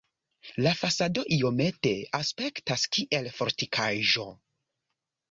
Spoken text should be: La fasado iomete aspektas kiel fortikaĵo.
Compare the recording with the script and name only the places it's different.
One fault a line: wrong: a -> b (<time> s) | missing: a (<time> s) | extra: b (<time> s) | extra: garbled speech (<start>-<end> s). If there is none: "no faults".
no faults